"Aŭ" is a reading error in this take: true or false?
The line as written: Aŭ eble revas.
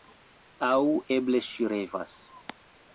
false